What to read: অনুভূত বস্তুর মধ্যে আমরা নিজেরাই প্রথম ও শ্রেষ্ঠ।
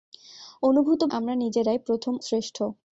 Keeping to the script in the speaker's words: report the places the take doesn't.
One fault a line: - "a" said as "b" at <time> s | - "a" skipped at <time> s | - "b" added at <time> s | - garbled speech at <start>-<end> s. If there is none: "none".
- "বস্তুর মধ্যে" skipped at 1.0 s
- "ও" skipped at 2.1 s